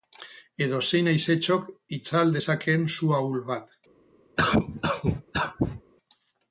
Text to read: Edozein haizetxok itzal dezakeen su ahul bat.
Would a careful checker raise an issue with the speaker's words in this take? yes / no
no